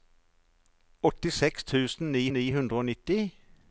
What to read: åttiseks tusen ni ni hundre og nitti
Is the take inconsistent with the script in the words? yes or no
no